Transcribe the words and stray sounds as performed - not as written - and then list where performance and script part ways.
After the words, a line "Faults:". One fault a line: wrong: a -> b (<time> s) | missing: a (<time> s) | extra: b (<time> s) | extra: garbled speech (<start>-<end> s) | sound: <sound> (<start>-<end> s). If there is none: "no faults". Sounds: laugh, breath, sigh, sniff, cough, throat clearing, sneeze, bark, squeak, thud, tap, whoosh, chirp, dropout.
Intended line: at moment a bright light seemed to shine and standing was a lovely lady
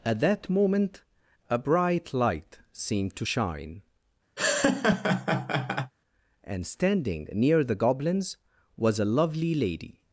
at that moment a bright light seemed to shine and standing near the goblins was a lovely lady
Faults:
extra: that (0.2 s)
sound: laugh (4.4-5.9 s)
extra: near the goblins (7.3 s)